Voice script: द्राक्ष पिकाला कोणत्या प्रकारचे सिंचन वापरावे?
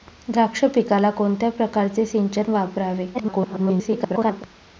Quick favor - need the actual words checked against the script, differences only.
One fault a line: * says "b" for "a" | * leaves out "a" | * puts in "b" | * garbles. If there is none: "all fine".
* garbles